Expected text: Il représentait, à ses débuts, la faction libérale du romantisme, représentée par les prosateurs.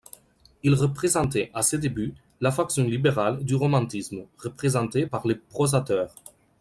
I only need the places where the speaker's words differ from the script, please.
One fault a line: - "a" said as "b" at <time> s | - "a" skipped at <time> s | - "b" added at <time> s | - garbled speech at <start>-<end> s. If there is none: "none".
none